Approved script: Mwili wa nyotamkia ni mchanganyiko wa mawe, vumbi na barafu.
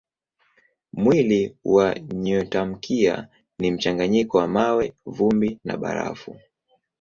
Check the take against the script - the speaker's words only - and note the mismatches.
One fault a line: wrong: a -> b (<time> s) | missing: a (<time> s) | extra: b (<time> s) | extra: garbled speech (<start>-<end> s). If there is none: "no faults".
no faults